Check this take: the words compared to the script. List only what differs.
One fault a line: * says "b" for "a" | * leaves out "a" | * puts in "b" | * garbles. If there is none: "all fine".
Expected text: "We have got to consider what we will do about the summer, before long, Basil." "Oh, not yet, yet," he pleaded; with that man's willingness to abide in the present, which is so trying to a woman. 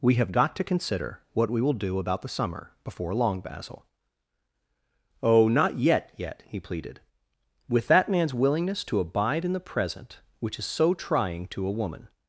all fine